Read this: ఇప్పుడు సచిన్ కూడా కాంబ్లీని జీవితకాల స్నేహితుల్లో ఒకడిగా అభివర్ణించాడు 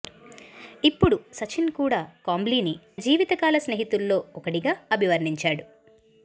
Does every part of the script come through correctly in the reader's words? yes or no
yes